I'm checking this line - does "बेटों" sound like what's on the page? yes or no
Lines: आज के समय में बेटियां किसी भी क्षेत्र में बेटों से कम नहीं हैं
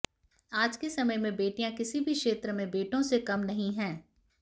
yes